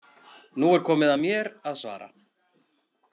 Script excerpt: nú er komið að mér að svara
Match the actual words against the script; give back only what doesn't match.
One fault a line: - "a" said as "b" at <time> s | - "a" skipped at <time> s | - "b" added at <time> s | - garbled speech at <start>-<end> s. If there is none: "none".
none